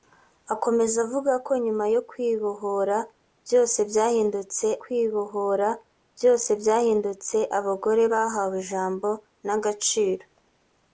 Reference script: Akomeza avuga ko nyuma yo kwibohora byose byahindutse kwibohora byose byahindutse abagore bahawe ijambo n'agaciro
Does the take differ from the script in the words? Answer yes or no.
no